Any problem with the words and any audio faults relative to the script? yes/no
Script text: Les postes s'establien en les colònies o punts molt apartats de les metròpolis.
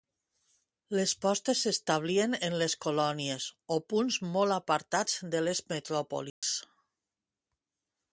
yes